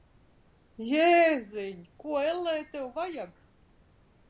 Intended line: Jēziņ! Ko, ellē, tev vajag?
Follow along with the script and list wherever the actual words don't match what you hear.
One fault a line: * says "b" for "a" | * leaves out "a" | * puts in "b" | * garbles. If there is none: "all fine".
all fine